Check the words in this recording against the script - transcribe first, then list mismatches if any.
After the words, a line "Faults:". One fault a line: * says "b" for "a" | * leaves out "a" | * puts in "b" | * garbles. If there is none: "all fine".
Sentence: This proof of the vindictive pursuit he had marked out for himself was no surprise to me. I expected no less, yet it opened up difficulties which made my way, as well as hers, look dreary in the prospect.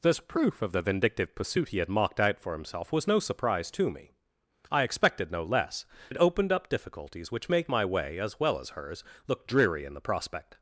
This proof of the vindictive pursuit he had marked out for himself was no surprise to me. I expected no less, it opened up difficulties which made my way, as well as hers, look dreary in the prospect.
Faults:
* leaves out "yet"